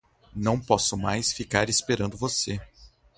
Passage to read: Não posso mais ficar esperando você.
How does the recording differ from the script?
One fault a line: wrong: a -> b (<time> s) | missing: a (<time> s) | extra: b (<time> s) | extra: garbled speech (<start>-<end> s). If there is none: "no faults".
no faults